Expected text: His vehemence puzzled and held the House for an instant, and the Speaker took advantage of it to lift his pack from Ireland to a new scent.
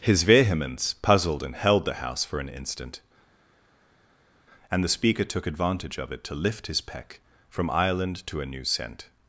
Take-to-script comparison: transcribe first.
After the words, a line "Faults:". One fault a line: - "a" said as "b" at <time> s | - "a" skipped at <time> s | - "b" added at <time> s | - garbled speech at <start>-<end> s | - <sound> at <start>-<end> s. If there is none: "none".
His vehemence puzzled and held the House for an instant, and the Speaker took advantage of it to lift his peck from Ireland to a new scent.
Faults:
- "pack" said as "peck" at 6.8 s